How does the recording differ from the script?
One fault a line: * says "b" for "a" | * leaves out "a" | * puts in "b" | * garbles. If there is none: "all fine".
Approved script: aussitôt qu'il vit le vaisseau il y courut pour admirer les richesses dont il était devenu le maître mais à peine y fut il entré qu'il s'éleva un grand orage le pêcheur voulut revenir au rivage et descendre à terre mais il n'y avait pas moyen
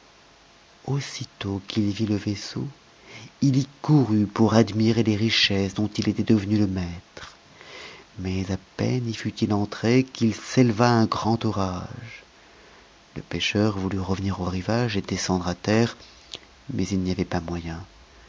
all fine